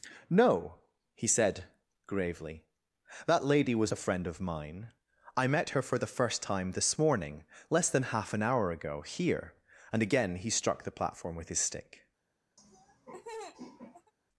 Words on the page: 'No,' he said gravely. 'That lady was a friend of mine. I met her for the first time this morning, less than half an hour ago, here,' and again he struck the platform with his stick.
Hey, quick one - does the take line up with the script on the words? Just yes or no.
yes